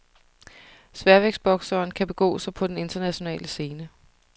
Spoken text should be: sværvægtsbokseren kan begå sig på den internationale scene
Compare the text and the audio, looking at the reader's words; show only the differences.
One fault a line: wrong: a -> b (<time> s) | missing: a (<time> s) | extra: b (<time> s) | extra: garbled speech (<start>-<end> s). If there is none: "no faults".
no faults